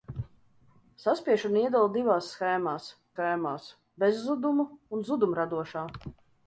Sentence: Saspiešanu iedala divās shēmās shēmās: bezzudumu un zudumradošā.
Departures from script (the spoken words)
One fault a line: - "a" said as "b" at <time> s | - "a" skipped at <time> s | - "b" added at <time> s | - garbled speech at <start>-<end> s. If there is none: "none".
none